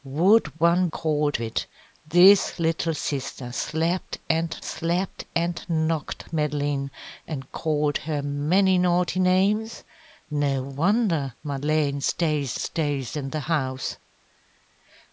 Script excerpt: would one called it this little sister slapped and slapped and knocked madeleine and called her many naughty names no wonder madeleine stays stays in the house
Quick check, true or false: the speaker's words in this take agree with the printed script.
true